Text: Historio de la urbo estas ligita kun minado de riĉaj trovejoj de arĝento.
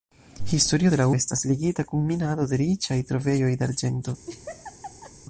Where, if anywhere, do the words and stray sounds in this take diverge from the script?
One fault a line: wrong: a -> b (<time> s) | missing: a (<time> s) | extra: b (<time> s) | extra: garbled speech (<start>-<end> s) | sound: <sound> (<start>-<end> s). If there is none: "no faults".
missing: urbo (1.1 s)
sound: laugh (4.3-5.1 s)